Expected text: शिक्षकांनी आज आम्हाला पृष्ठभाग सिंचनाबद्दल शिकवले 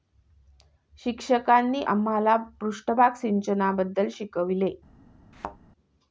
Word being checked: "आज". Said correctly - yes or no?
no